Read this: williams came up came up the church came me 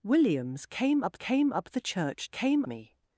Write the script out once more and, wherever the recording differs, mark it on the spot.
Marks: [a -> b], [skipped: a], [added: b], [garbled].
williams came up came up the church came me